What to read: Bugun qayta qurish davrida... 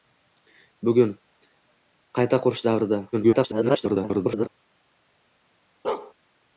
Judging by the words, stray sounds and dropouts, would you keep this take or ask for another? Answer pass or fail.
fail